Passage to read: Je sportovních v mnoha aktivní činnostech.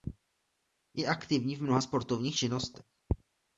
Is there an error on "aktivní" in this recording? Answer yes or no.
yes